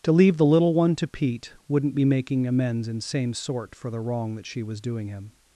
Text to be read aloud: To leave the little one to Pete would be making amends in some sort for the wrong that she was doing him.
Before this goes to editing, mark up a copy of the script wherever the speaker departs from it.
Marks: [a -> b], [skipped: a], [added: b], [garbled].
To leave the little one to Pete [would -> wouldn't] be making amends in [some -> same] sort for the wrong that she was doing him.